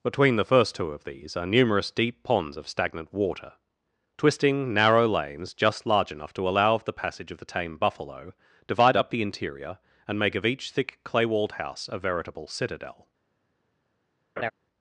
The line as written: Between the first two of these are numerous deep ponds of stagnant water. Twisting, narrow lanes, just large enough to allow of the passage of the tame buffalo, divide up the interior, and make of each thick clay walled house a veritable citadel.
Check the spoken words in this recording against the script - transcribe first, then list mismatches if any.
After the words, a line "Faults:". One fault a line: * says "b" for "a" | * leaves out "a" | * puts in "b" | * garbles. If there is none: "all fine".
Between the first two of these are numerous deep ponds of stagnant water. Twisting, narrow lanes, just large enough to allow of the passage of the tame buffalo, divide up the interior, and make of each thick clay walled house a veritable citadel.
Faults:
all fine